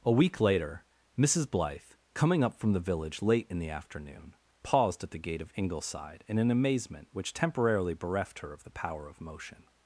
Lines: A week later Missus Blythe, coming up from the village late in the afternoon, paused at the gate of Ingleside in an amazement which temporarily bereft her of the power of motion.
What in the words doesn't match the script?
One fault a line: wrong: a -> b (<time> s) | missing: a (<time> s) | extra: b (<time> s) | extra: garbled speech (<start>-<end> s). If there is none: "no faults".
no faults